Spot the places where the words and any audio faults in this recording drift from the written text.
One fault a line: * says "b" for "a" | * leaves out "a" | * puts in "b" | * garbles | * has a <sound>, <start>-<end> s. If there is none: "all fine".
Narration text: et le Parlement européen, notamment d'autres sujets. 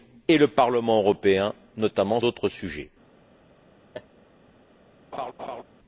* has a laugh, 3.9-4.1 s
* has a laugh, 5.1-5.6 s